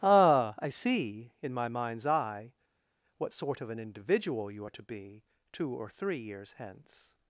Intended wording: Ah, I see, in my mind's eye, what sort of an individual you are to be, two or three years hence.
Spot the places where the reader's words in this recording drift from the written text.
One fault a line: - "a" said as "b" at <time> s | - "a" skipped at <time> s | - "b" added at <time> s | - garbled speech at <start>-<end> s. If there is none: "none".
none